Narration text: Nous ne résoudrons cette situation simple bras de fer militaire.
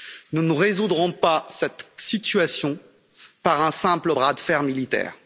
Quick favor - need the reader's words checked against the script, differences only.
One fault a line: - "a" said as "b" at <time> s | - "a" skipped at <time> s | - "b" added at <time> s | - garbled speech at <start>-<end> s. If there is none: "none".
- "pas" added at 1.1 s
- "par un" added at 3.4 s